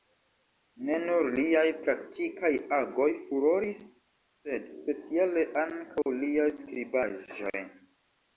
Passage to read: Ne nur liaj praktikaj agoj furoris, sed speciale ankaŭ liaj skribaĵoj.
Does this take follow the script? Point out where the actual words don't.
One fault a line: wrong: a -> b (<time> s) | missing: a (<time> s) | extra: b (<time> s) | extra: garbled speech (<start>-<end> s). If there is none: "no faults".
no faults